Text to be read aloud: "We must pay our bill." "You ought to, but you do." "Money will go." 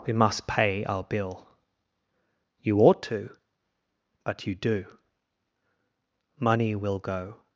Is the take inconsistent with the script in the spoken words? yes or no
no